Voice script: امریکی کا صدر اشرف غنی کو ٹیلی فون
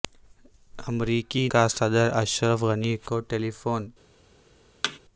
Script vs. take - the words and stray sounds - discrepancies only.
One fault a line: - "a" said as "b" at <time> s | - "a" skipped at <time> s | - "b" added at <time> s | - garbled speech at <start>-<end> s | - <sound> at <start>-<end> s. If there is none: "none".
- thud at 4.8-5.0 s